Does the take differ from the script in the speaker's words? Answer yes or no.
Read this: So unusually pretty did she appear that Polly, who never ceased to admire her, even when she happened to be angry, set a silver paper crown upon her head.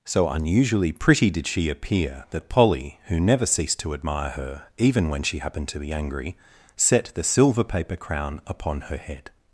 yes